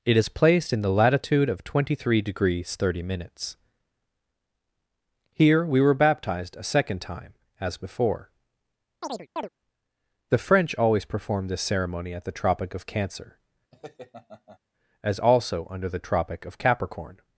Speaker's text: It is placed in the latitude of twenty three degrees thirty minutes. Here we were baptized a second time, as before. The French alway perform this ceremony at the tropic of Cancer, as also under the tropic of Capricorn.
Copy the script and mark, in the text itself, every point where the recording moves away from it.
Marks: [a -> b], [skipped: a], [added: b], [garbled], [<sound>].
It is placed in the latitude of twenty three degrees thirty minutes. Here we were baptized a second time, as before. [chirp] The French [alway -> always] perform this ceremony at the tropic of Cancer, [laugh] as also under the tropic of Capricorn.